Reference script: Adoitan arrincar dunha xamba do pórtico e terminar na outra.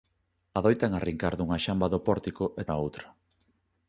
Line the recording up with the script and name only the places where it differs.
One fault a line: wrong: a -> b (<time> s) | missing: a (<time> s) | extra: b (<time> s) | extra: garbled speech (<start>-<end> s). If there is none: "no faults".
missing: terminar (2.6 s)